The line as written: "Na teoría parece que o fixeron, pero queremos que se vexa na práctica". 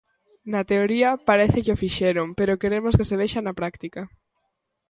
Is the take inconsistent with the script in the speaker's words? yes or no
no